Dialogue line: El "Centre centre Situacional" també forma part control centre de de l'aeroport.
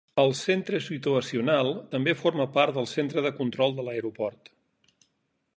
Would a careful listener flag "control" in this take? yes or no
yes